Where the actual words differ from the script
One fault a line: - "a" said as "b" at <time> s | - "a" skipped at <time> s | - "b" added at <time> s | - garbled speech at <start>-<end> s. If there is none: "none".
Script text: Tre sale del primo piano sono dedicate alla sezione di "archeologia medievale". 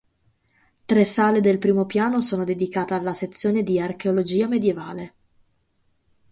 none